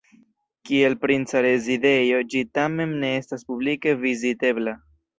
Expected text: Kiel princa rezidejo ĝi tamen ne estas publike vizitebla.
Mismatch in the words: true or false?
false